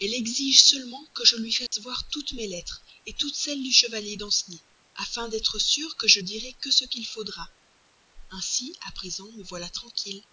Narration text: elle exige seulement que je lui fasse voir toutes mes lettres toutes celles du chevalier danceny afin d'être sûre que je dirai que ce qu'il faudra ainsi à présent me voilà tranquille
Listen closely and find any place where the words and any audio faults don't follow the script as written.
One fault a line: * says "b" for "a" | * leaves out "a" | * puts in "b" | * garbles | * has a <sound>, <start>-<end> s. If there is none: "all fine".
* has a dropout, 1.7-1.7 s